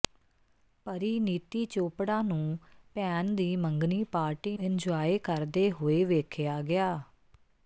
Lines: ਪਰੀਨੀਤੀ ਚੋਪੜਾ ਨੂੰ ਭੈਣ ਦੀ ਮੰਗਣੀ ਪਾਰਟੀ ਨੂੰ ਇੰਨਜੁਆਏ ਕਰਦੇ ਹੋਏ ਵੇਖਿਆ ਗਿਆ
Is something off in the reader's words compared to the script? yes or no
yes